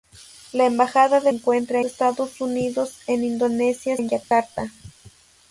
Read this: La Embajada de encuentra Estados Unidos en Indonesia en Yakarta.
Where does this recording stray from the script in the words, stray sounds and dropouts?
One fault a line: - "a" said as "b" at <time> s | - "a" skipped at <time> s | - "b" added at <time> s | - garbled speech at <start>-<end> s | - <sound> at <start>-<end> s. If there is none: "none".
- dropout at 4.2-4.3 s